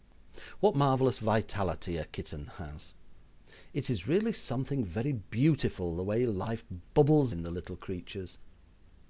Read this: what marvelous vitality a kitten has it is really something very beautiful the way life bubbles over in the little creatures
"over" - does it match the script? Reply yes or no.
no